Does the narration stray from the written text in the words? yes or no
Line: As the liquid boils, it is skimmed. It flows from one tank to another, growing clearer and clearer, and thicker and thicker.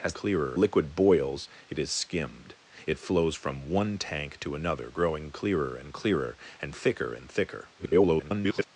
yes